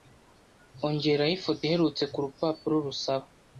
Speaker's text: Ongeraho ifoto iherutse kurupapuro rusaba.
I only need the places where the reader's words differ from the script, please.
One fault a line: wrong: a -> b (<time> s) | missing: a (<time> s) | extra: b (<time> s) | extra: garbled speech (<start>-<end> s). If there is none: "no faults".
no faults